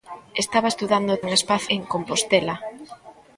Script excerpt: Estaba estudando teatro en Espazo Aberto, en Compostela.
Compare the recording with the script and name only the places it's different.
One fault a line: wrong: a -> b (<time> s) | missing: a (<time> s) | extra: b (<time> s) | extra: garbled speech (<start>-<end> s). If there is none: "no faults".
missing: teatro (1.2 s)
missing: Aberto (1.7 s)